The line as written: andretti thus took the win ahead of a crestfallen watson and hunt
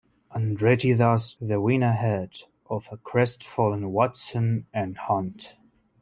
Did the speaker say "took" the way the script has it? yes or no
no